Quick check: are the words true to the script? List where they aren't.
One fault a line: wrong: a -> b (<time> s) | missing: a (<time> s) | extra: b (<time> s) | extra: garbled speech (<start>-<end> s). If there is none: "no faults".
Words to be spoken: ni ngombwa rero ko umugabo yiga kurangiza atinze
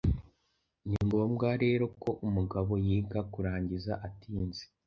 no faults